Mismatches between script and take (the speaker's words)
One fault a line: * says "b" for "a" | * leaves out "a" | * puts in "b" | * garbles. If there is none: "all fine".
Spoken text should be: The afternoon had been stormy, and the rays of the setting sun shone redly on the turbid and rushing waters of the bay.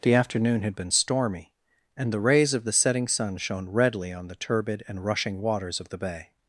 all fine